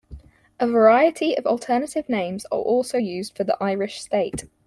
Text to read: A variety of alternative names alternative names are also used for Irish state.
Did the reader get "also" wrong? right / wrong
right